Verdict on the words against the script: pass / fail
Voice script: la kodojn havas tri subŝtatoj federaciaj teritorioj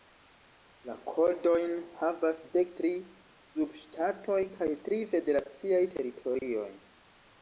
fail